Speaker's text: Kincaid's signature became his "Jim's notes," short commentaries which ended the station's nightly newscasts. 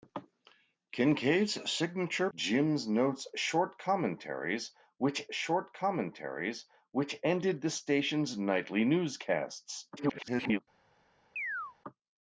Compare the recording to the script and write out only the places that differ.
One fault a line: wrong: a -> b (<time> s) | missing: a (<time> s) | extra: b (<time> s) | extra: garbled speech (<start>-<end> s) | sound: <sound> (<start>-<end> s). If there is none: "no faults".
wrong: became his Jim's notes -> Jim's notes short commentaries which (2.4 s)
extra: garbled speech (10.0-10.6 s)
sound: chirp (11.4-11.8 s)